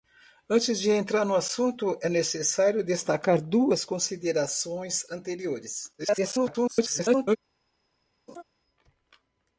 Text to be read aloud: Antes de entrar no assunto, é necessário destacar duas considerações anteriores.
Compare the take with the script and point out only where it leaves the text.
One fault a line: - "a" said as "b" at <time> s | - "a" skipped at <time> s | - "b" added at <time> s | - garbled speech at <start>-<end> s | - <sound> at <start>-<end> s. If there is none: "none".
- garbled speech at 6.0-7.4 s
- laugh at 8.3-8.4 s